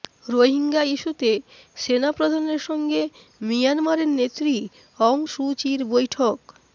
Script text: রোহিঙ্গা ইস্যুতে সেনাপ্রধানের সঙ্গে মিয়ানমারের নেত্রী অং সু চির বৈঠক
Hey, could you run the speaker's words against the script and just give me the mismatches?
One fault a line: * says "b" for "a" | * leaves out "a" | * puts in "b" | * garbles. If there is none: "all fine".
all fine